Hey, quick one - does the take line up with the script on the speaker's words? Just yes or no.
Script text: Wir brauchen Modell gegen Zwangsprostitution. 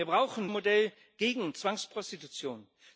yes